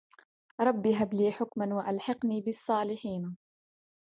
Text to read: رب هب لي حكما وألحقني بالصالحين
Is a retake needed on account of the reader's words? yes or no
no